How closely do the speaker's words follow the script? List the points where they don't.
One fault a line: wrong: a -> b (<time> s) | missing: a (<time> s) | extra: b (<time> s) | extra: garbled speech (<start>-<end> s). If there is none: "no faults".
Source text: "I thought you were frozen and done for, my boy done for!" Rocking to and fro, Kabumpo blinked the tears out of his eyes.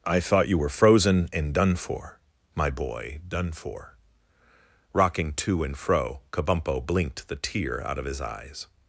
wrong: tears -> tear (7.4 s)